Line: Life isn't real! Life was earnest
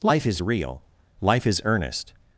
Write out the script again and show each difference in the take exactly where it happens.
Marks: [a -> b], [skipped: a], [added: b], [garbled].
Life [isn't -> is] real! Life [was -> is] earnest